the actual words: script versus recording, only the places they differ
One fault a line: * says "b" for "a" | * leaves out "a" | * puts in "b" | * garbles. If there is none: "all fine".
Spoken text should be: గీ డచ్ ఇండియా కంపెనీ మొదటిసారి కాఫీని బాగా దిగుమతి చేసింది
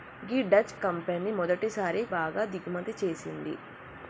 * leaves out "ఇండియా"
* leaves out "కాఫీని"